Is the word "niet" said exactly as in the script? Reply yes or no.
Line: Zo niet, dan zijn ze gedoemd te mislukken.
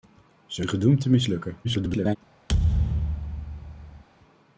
no